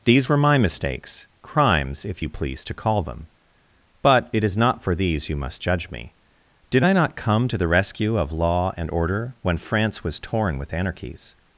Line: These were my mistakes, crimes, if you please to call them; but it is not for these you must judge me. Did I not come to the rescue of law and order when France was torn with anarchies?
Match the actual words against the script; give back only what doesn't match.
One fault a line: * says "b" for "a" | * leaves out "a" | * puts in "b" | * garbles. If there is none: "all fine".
all fine